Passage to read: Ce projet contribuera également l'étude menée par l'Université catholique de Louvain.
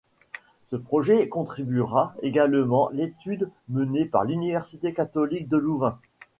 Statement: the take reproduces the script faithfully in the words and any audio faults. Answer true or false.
true